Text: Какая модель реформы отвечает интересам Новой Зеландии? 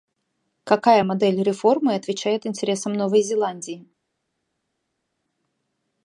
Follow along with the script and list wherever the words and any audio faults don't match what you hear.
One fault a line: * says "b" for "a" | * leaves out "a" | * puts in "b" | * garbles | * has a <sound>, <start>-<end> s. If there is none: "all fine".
all fine